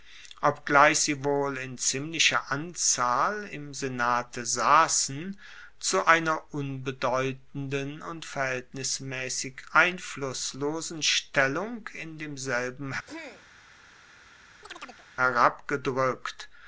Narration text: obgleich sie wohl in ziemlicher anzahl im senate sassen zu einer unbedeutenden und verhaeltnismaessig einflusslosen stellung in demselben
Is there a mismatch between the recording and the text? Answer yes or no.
no